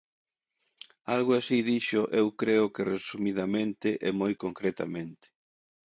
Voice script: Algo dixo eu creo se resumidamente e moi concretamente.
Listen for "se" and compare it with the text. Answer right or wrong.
wrong